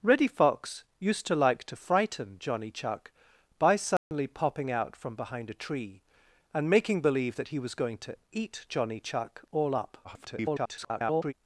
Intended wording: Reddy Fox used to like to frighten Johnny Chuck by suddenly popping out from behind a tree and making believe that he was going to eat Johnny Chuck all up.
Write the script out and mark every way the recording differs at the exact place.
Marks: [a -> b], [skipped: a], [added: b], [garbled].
Reddy Fox used to like to frighten Johnny Chuck by suddenly popping out from behind a tree and making believe that he was going to eat Johnny Chuck all up. [garbled]